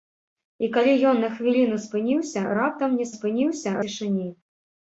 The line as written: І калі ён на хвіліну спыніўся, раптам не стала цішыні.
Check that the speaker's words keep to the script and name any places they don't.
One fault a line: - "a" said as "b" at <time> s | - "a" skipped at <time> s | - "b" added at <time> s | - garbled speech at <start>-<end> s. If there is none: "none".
- "стала" said as "спыніўся" at 3.1 s